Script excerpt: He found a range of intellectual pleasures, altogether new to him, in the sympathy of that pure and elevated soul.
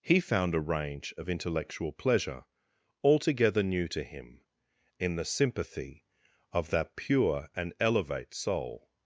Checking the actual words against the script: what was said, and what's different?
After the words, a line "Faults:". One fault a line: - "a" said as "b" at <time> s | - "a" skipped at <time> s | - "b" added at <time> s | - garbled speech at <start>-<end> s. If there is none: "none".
He found a range of intellectual pleasure, altogether new to him, in the sympathy of that pure and elevate soul.
Faults:
- "pleasures" said as "pleasure" at 1.9 s
- "elevated" said as "elevate" at 7.8 s